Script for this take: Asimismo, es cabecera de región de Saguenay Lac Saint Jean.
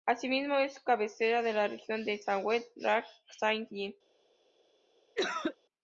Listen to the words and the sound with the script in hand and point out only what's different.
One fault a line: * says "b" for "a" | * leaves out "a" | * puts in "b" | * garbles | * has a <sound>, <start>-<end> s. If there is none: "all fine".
* puts in "la"
* has a cough, 5.1-5.6 s